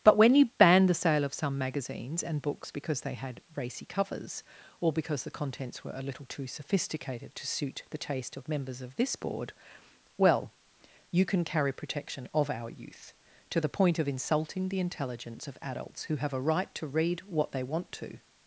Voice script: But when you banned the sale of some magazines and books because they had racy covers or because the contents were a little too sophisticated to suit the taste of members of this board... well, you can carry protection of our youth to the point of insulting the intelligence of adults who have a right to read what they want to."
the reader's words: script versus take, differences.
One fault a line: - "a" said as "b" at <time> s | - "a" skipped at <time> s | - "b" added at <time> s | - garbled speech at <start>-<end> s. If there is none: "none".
none